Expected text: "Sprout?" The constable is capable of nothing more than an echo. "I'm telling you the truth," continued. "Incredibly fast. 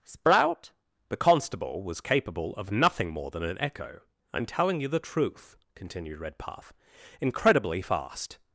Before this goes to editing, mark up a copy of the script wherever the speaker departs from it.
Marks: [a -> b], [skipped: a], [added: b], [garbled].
"Sprout?" The constable [is -> was] capable of nothing more than an echo. "I'm telling you the truth," continued. [added: Redpath] "Incredibly fast.